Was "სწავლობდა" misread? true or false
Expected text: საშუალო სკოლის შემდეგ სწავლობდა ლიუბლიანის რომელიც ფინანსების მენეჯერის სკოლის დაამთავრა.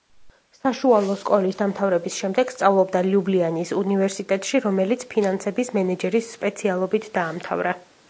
false